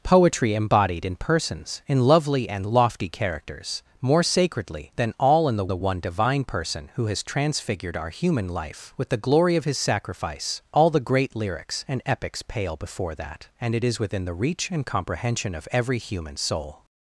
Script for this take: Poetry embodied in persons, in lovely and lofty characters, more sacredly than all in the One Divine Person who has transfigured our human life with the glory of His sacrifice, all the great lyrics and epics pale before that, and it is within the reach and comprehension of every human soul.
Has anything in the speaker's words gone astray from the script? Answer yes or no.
yes